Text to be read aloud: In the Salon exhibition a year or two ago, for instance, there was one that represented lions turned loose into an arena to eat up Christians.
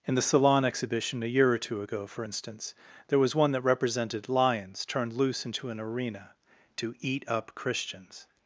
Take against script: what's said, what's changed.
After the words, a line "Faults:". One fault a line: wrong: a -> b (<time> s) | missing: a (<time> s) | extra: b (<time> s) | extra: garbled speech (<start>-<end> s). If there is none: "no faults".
In the Salon exhibition a year or two ago, for instance, there was one that represented lions turned loose into an arena to eat up Christians.
Faults:
no faults